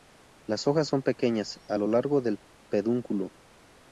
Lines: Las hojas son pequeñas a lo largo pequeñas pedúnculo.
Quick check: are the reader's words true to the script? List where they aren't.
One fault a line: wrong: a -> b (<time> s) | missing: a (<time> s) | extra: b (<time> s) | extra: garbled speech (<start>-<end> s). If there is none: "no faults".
wrong: pequeñas -> del (2.2 s)